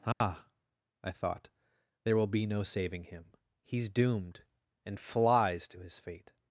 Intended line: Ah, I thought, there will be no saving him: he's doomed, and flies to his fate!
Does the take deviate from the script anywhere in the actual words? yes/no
no